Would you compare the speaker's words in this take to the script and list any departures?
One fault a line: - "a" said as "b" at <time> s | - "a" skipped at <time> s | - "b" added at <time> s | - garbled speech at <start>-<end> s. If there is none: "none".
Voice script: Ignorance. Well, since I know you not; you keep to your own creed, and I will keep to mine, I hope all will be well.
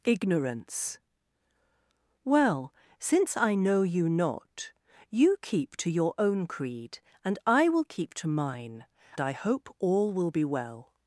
none